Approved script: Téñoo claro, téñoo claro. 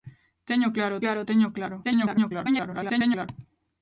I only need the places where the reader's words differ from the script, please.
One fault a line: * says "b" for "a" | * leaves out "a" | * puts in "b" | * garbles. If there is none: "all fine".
* puts in "claro"
* garbles